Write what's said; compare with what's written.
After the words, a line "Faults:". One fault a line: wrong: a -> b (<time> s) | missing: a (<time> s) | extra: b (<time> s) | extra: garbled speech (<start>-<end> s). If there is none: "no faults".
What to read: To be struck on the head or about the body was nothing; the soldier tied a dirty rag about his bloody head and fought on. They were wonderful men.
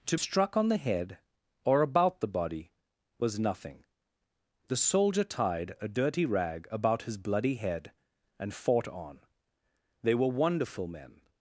To struck on the head or about the body was nothing; the soldier tied a dirty rag about his bloody head and fought on. They were wonderful men.
Faults:
missing: be (0.2 s)